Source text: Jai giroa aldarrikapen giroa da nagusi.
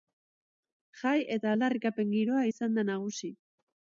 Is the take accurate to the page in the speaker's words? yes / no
no